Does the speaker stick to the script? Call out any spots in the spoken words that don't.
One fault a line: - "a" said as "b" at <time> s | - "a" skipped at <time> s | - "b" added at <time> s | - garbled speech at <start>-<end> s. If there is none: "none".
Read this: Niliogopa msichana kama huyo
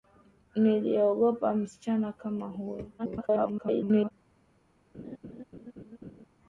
- garbled speech at 3.0-4.1 s